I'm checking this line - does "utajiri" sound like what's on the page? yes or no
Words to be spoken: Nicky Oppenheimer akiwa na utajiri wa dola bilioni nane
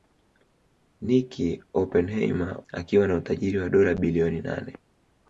yes